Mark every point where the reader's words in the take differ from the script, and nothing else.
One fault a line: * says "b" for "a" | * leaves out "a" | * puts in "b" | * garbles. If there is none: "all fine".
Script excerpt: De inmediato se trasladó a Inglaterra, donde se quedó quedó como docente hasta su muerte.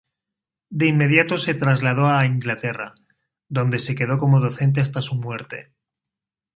* leaves out "quedó"